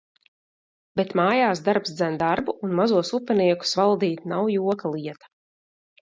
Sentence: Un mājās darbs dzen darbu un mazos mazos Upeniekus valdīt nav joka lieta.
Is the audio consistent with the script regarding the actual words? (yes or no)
no